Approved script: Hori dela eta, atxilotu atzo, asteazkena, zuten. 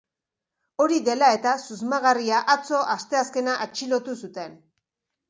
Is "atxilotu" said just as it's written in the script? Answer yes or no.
no